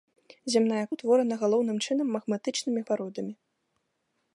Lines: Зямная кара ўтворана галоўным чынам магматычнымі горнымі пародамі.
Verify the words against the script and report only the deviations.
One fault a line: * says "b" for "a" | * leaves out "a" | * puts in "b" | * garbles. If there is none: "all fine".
* leaves out "кара"
* leaves out "горнымі"